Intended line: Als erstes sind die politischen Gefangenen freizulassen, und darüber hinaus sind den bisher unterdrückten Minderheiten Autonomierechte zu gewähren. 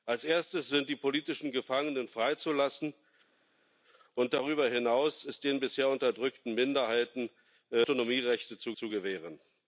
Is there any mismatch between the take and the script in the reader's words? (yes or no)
yes